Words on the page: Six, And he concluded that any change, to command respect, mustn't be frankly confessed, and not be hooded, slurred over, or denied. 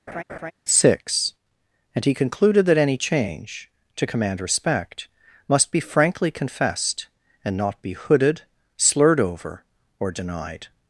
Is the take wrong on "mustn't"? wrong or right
wrong